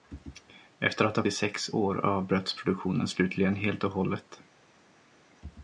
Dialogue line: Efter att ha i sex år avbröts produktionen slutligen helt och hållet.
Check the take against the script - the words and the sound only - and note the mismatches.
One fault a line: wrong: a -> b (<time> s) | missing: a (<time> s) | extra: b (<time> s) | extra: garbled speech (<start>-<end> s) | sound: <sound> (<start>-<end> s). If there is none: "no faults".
no faults